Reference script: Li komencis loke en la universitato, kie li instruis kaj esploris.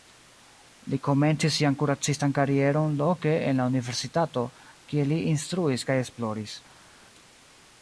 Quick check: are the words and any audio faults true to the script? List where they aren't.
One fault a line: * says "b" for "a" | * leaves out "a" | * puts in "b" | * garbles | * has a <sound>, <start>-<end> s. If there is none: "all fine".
* puts in "sian kuracistan karieron"